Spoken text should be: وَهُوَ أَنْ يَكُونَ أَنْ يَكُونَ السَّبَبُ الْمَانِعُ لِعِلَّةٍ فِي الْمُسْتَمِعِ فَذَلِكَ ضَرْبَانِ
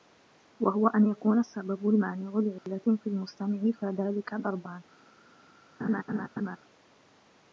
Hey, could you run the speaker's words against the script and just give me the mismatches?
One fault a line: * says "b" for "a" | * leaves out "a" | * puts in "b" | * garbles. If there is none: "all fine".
* leaves out "أَنْ يَكُونَ"